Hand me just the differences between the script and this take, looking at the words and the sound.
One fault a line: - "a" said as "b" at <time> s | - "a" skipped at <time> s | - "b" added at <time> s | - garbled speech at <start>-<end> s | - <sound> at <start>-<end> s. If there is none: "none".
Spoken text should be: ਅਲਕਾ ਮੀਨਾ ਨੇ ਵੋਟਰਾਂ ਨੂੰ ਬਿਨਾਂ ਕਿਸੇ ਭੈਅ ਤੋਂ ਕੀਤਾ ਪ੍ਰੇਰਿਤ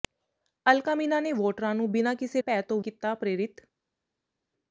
none